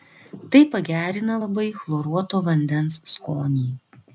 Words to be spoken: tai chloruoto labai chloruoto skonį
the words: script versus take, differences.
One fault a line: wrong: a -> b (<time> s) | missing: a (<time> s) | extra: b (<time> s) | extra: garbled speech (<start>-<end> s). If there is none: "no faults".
wrong: chloruoto -> pagerina (0.8 s)
extra: vandens (2.5 s)